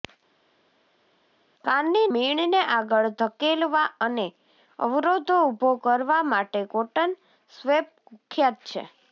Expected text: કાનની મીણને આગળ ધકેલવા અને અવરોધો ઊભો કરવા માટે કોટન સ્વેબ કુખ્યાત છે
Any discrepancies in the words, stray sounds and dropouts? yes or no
no